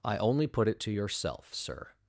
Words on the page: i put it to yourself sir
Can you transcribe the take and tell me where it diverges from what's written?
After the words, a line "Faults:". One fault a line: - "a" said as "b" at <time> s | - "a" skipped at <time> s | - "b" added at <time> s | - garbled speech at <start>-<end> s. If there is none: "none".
i only put it to yourself sir
Faults:
- "only" added at 0.2 s